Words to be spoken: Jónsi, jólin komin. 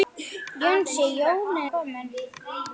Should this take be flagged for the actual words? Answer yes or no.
no